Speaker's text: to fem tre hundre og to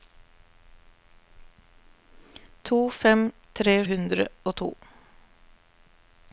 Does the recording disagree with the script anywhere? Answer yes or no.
no